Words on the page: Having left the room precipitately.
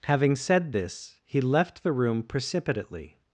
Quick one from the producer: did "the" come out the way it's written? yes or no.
yes